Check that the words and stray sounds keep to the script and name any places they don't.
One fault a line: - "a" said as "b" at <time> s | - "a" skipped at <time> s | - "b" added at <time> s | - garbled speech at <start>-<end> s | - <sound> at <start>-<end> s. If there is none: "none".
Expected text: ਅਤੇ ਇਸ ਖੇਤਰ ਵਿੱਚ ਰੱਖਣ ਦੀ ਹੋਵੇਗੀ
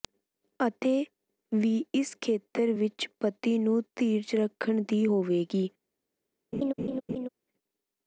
- "ਵੀ" added at 1.5 s
- "ਪਤੀ ਨੂੰ ਧੀਰਜ" added at 3.2 s
- laugh at 6.5-7.3 s